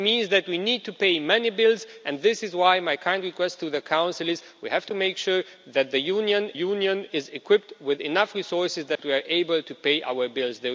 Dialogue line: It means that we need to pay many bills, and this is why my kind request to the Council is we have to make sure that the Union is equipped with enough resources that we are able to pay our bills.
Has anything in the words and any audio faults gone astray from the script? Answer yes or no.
yes